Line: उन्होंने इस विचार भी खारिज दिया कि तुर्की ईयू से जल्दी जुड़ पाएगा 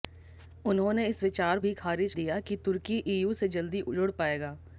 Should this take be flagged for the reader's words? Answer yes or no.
no